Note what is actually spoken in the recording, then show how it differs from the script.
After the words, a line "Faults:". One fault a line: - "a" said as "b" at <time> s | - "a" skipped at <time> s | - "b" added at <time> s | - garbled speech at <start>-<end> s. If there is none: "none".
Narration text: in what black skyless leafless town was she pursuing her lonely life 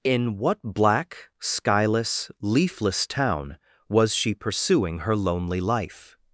in what black skyless leafless town was she pursuing her lonely life
Faults:
none